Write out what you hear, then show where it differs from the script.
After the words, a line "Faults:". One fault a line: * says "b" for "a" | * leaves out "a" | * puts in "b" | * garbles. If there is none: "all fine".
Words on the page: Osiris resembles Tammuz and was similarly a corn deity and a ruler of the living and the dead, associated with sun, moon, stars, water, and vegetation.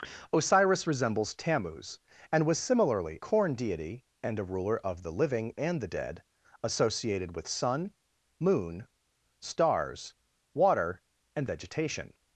Osiris resembles Tammuz and was similarly corn deity and a ruler of the living and the dead, associated with sun, moon, stars, water, and vegetation.
Faults:
* leaves out "a"